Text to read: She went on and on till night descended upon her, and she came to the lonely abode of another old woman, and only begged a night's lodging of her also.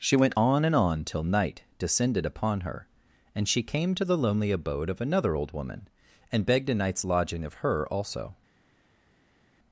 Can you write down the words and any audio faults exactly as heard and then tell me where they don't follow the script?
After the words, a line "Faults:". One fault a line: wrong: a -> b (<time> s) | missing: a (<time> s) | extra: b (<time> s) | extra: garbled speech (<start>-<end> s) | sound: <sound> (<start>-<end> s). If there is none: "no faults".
She went on and on till night descended upon her, and she came to the lonely abode of another old woman, and begged a night's lodging of her also.
Faults:
missing: only (6.4 s)